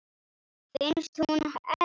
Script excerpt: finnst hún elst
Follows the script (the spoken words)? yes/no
yes